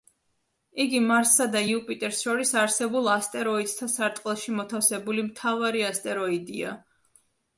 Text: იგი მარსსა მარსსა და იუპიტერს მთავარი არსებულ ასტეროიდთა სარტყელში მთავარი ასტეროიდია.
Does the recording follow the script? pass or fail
fail